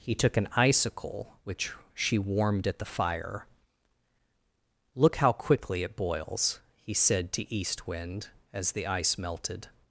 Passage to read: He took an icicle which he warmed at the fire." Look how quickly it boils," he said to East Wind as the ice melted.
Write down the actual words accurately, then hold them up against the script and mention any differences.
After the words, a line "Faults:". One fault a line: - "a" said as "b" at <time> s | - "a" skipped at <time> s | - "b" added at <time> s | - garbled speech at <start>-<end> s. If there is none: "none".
He took an icicle which she warmed at the fire." Look how quickly it boils," he said to East Wind as the ice melted.
Faults:
- "he" said as "she" at 1.9 s